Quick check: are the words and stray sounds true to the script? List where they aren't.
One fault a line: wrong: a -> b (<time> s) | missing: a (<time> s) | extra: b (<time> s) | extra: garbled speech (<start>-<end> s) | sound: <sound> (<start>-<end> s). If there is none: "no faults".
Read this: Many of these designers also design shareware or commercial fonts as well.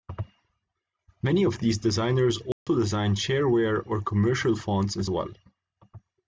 sound: dropout (2.5-2.7 s)